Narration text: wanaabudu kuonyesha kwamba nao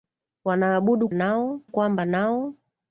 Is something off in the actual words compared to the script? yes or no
yes